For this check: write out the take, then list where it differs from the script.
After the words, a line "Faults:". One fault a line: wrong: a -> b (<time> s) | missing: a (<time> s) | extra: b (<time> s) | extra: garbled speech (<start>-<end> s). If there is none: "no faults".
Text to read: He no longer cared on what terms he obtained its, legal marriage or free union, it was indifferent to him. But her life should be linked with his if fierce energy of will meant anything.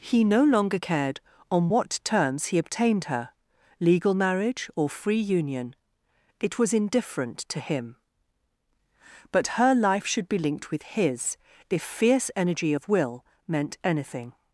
He no longer cared on what terms he obtained her, legal marriage or free union, it was indifferent to him. But her life should be linked with his if fierce energy of will meant anything.
Faults:
wrong: its -> her (3.0 s)